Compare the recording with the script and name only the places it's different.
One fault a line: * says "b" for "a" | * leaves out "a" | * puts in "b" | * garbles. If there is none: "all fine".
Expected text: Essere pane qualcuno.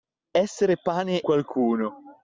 all fine